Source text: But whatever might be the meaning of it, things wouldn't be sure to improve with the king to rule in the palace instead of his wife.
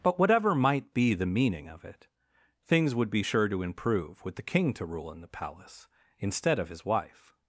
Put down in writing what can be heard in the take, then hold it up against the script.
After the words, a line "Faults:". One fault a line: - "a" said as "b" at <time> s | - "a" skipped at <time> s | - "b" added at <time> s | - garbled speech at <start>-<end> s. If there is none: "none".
But whatever might be the meaning of it, things would be sure to improve with the king to rule in the palace instead of his wife.
Faults:
- "wouldn't" said as "would" at 3.0 s